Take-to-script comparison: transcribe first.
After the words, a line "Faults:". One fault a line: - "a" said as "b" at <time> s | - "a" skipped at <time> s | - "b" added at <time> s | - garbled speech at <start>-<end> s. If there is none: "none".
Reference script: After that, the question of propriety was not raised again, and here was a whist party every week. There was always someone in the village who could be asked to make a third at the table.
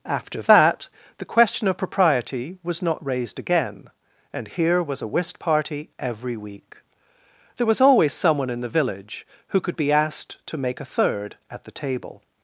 After that, the question of propriety was not raised again, and here was a whist party every week. There was always someone in the village who could be asked to make a third at the table.
Faults:
none